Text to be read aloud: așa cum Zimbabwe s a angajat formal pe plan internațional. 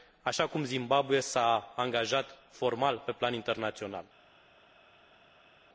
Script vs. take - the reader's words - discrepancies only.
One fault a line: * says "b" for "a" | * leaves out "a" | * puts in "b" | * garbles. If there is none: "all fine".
all fine